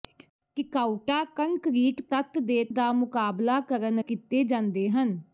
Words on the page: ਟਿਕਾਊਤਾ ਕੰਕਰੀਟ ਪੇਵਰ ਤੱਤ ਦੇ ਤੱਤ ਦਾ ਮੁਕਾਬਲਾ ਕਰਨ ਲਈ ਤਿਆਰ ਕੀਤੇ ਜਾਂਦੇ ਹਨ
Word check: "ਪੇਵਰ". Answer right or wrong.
wrong